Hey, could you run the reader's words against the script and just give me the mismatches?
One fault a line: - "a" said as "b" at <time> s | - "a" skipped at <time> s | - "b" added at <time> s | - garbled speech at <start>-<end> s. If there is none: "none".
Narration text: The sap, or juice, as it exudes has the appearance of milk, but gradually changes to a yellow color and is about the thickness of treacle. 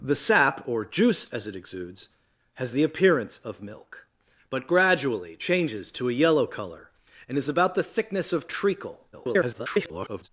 - garbled speech at 9.1-10.3 s